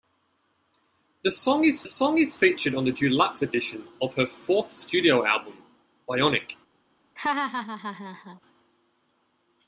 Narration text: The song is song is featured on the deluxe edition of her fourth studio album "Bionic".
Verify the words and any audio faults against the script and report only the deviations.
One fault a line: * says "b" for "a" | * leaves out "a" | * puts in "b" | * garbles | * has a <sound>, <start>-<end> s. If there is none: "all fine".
* has a laugh, 7.2-8.4 s